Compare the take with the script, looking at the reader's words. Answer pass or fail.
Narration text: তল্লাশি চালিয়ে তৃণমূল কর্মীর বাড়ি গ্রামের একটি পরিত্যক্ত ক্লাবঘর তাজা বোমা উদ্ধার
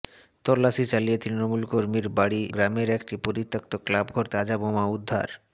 pass